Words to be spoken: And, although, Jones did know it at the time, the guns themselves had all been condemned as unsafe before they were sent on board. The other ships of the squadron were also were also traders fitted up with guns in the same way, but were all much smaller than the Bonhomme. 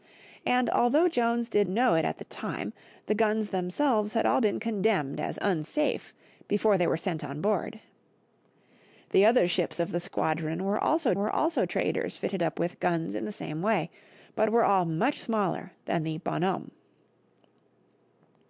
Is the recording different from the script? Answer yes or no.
no